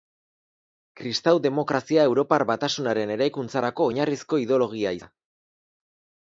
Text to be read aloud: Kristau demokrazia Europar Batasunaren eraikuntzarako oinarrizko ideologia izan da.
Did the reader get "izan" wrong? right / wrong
wrong